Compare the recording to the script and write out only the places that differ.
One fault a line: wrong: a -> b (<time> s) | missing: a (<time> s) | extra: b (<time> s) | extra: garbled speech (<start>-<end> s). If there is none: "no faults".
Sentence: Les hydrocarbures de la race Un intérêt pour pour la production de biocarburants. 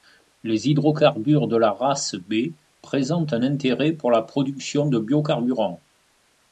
extra: B présentent (2.1 s)
missing: pour (4.1 s)